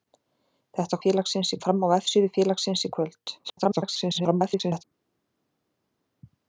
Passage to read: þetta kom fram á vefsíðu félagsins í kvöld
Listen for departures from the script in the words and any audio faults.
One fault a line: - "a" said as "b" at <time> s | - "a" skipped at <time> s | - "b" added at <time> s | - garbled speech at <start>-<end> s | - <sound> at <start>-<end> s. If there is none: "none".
- "kom" said as "félagsins" at 1.1 s
- garbled speech at 3.4-4.8 s